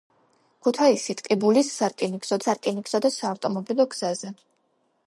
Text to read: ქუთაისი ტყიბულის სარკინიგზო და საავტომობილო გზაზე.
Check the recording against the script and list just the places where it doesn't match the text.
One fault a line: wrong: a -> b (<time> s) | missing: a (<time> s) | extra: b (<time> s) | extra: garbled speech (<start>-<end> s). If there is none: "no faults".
extra: სარკინიგზო (2.4 s)